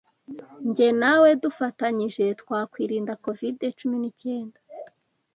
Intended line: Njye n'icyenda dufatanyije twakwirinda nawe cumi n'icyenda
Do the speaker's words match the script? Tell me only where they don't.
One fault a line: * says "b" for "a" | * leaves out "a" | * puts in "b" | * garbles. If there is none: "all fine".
* says "nawe" for "n'icyenda"
* says "covid" for "nawe"